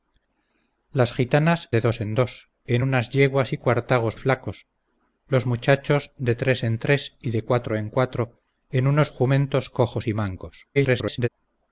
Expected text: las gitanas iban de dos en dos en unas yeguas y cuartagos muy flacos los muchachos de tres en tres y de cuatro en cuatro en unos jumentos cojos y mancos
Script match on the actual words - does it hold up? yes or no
no